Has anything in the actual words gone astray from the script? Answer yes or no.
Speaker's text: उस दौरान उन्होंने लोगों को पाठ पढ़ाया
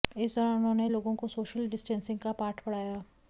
yes